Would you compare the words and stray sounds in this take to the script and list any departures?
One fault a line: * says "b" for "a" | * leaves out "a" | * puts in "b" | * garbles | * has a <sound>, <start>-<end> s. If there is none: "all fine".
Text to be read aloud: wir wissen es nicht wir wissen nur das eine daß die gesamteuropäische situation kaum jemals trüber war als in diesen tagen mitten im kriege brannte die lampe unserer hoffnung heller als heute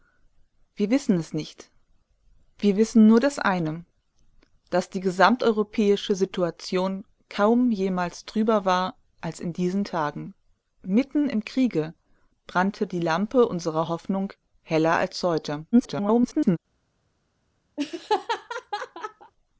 * garbles
* has a laugh, 17.8-19.3 s